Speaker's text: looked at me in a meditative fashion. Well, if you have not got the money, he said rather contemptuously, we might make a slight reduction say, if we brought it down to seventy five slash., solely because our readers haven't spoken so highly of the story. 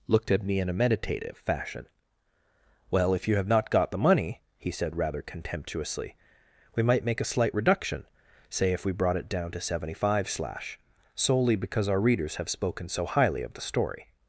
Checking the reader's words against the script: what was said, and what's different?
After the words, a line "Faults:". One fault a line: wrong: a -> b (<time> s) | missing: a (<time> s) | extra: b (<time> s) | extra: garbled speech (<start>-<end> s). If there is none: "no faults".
looked at me in a meditative fashion. Well, if you have not got the money, he said rather contemptuously, we might make a slight reduction say, if we brought it down to seventy five slash., solely because our readers have spoken so highly of the story.
Faults:
wrong: haven't -> have (12.4 s)